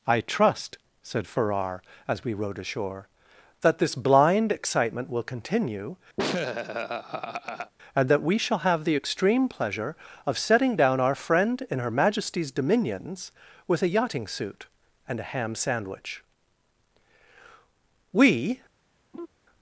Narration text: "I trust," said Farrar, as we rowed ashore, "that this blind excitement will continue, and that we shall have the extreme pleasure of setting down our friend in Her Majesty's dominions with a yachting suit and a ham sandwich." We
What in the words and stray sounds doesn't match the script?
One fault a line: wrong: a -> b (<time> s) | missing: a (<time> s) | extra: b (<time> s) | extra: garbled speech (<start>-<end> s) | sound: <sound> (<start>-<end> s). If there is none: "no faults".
sound: laugh (6.2-7.7 s)
sound: laugh (19.1-19.3 s)